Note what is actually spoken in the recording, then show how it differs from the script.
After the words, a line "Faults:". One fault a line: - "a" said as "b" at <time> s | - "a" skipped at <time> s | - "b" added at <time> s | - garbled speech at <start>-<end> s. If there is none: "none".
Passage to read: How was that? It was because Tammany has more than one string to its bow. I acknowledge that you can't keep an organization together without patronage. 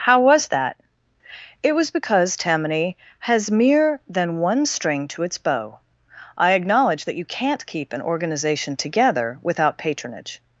How was that? It was because Tammany has mere than one string to its bow. I acknowledge that you can't keep an organization together without patronage.
Faults:
- "more" said as "mere" at 3.5 s